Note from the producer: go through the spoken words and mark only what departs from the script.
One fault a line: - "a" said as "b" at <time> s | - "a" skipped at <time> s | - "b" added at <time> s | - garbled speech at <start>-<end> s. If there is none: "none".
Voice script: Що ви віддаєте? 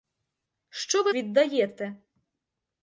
none